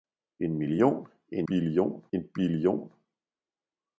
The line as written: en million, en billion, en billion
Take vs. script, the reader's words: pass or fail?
pass